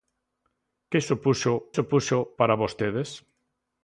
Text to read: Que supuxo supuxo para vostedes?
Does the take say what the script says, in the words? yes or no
yes